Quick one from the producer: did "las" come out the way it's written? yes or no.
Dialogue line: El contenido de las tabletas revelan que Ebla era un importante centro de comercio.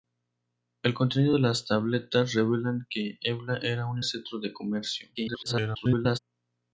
yes